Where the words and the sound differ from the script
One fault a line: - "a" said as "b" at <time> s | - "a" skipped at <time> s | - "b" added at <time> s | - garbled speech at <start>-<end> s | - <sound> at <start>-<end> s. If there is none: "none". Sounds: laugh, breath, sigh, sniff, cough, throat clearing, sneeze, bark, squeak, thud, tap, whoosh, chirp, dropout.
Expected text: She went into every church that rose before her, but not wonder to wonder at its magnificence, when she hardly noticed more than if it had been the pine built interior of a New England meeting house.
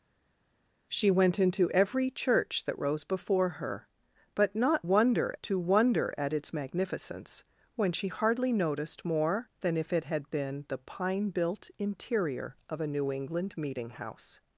none